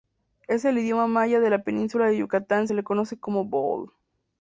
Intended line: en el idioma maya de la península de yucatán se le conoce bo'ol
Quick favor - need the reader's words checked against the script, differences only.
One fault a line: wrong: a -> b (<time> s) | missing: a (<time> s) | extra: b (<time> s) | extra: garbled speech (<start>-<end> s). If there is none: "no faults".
extra: como (3.2 s)